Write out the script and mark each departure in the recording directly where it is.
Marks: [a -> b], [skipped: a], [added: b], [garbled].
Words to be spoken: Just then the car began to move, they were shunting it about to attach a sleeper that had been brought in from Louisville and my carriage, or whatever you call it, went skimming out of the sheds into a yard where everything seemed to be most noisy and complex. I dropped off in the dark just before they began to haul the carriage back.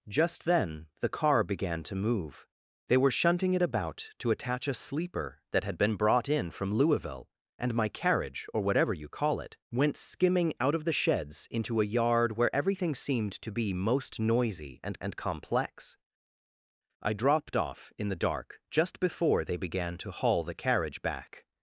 Just then the car began to move, they were shunting it about to attach a sleeper that had been brought in from Louisville and my carriage, or whatever you call it, went skimming out of the sheds into a yard where everything seemed to be most noisy and [added: and] complex. I dropped off in the dark just before they began to haul the carriage back.